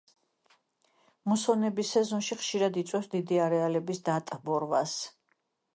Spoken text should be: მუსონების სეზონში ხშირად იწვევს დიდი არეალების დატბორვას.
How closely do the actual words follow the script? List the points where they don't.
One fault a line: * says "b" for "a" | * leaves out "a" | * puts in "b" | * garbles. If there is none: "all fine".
all fine